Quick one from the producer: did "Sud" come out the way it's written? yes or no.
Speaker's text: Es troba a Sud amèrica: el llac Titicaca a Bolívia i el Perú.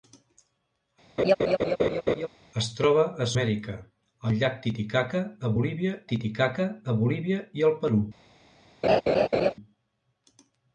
no